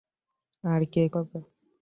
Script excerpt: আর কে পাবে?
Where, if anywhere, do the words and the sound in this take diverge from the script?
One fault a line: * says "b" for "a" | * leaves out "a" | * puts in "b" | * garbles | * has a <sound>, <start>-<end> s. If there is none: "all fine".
all fine